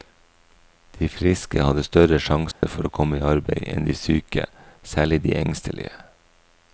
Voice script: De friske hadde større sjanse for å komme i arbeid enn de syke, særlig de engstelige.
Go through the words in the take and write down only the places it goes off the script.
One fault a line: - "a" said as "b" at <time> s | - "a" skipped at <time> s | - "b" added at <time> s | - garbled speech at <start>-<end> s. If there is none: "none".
none